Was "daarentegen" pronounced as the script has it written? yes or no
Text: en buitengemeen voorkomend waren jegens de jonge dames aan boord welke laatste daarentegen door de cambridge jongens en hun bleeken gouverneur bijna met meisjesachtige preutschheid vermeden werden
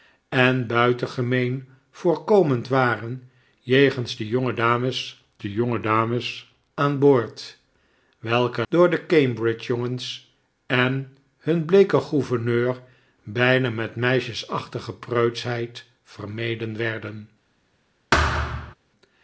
no